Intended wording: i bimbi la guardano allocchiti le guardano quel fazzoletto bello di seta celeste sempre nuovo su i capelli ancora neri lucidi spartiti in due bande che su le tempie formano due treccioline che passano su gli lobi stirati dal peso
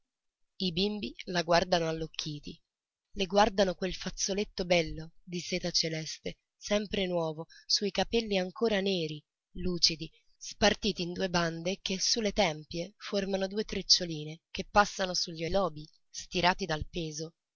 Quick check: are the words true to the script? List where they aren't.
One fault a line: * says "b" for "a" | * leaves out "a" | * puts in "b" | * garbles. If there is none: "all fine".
all fine